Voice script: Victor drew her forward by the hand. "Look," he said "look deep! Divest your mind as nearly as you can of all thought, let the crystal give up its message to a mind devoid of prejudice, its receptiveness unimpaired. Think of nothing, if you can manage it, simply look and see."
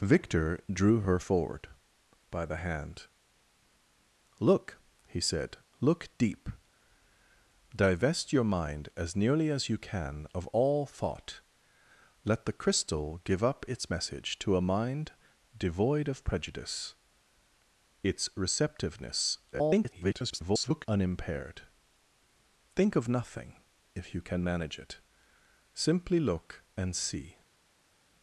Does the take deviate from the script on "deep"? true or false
false